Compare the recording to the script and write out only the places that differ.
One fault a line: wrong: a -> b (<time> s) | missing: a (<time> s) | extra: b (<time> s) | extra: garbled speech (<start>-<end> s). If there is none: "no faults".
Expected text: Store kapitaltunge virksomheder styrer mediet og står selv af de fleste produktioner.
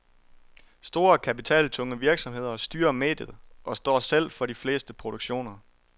wrong: af -> for (4.3 s)